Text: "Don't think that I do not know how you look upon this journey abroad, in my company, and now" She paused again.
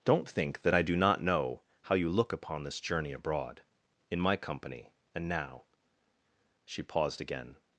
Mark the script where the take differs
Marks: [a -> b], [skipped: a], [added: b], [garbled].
"Don't think that I do not know how you look upon this journey abroad, in my company, and now" She paused again.